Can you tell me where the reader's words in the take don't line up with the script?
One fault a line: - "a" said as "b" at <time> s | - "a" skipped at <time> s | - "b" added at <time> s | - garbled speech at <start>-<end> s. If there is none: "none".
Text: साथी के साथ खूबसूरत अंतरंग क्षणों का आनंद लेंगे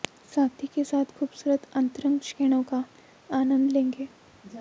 none